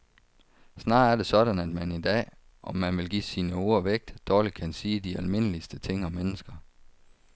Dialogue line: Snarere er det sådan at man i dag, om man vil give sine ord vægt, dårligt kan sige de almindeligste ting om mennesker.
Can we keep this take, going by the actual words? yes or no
yes